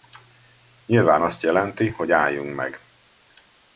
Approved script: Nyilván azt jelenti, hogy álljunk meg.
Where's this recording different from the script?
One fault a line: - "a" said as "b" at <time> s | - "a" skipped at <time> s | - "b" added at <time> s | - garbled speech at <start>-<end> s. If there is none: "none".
none